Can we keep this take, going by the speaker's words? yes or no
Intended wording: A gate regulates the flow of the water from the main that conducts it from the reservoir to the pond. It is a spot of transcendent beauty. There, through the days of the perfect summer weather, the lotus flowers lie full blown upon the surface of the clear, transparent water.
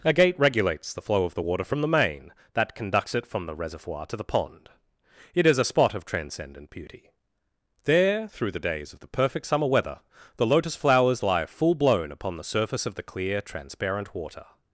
yes